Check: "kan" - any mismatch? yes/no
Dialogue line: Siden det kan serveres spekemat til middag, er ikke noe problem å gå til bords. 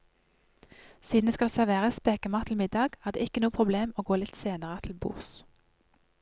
yes